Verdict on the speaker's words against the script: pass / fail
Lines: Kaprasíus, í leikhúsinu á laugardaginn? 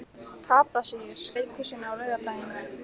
pass